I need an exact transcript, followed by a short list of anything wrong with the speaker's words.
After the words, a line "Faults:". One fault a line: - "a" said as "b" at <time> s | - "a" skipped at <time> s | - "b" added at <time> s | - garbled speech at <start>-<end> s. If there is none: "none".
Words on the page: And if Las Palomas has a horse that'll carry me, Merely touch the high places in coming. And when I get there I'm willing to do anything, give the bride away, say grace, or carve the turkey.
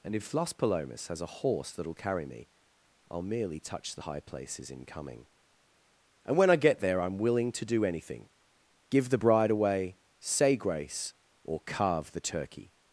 And if Las Palomas has a horse that'll carry me, I'll merely touch the high places in coming. And when I get there I'm willing to do anything, give the bride away, say grace, or carve the turkey.
Faults:
- "I'll" added at 3.1 s